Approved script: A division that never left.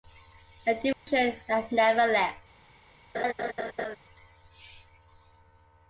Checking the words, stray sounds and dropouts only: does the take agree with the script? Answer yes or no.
no